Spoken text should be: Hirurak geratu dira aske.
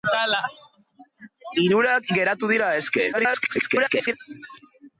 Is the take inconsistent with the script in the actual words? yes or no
yes